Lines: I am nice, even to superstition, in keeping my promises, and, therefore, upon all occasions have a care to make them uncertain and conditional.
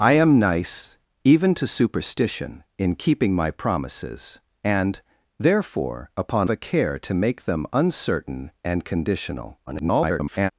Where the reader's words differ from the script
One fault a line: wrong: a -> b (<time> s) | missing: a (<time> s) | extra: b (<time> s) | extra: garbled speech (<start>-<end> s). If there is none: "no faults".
missing: all occasions have (6.5 s)
extra: garbled speech (9.7-10.5 s)